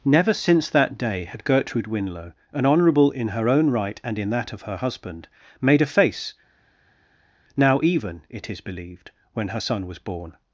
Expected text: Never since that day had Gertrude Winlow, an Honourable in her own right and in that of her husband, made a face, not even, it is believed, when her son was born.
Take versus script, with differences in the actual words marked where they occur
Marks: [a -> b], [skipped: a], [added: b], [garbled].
Never since that day had Gertrude Winlow, an Honourable in her own right and in that of her husband, made a face, [not -> now] even, it is believed, when her son was born.